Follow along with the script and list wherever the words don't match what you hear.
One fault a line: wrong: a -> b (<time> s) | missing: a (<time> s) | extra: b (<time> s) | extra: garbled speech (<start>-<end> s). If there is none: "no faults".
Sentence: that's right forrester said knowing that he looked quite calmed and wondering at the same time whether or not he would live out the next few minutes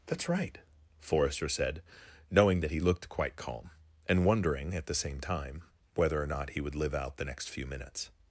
wrong: calmed -> calm (3.4 s)